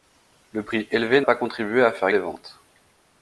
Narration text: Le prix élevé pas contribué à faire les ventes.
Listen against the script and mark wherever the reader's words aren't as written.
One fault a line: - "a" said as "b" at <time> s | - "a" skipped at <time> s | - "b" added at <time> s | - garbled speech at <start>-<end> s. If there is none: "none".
none